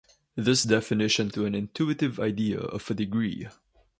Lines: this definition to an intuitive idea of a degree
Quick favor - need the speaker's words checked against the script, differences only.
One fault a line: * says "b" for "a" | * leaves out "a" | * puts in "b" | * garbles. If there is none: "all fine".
all fine